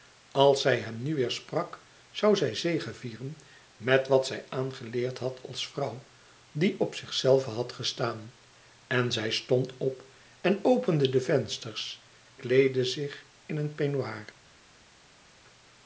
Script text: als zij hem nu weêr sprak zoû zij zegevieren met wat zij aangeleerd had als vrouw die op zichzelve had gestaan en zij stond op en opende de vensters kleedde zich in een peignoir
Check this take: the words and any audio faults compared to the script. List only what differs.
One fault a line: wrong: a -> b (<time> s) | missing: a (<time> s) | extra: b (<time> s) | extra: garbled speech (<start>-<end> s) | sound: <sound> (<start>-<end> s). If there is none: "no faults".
no faults